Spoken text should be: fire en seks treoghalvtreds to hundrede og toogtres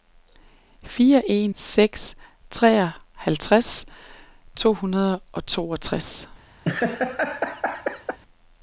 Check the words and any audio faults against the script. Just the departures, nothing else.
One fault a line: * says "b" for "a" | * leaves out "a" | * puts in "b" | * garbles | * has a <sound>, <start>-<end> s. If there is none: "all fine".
* has a laugh, 6.6-8.2 s